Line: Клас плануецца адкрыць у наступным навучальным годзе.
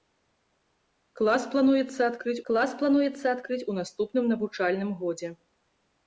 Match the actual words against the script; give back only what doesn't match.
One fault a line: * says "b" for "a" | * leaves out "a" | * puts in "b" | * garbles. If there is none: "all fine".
* puts in "клас плануецца адкрыць"